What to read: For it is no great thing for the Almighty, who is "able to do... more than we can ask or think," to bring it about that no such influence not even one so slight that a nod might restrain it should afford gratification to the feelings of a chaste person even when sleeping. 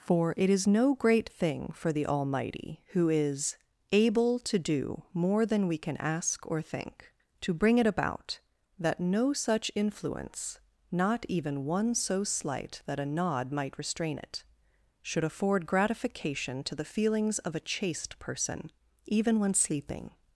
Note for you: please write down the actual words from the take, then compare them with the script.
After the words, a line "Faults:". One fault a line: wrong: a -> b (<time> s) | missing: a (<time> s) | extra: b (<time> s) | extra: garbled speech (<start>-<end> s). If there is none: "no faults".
For it is no great thing for the Almighty, who is "able to do... more than we can ask or think," to bring it about that no such influence not even one so slight that a nod might restrain it should afford gratification to the feelings of a chaste person even when sleeping.
Faults:
no faults